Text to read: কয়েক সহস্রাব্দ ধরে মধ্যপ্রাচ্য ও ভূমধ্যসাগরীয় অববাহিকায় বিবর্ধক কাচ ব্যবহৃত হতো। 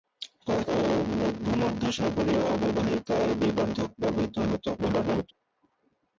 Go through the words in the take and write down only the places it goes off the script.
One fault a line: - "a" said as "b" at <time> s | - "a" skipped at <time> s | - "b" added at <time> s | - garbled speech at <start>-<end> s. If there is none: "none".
- "সহস্রাব্দ ধরে মধ্যপ্রাচ্য" skipped at 0.7 s
- "কাচ" skipped at 3.9 s
- garbled speech at 4.8-5.3 s